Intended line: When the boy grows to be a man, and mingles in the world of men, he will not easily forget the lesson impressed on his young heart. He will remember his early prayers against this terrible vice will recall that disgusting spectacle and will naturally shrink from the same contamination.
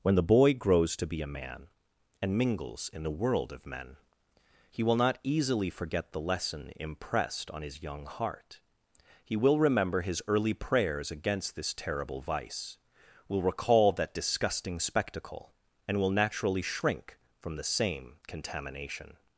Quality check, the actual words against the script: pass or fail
pass